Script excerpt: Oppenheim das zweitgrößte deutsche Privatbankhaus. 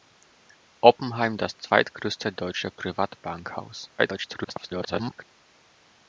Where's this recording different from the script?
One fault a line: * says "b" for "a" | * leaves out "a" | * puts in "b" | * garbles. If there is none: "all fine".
* garbles